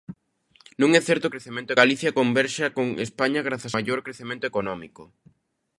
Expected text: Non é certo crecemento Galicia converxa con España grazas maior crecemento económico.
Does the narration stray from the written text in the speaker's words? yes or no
no